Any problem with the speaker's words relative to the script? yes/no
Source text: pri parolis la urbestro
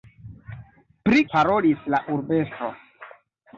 no